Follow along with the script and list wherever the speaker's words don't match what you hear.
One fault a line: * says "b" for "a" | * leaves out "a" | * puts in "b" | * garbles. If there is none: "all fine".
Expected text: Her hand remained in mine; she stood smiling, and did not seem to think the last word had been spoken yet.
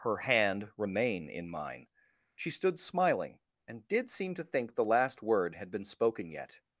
* says "remain" for "remained"
* leaves out "not"